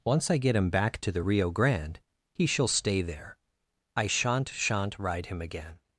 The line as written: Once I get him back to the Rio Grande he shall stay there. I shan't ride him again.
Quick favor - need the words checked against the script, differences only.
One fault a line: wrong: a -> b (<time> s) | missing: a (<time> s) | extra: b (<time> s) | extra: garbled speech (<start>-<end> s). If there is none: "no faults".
extra: shan't (4.5 s)